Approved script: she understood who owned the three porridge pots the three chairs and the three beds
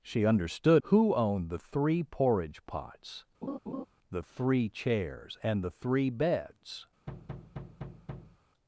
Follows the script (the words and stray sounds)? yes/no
no